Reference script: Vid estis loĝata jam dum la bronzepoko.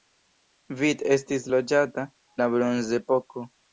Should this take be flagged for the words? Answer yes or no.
yes